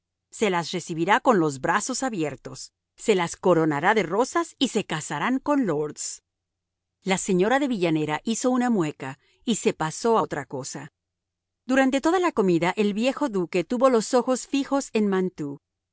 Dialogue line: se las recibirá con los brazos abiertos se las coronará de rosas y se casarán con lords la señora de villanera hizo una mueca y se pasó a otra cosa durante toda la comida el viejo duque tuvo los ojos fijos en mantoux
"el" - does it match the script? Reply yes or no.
yes